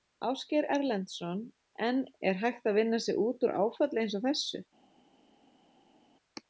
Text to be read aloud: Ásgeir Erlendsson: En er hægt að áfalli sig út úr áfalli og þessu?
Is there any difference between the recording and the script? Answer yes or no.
yes